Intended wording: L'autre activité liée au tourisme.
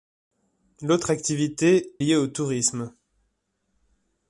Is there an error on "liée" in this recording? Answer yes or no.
no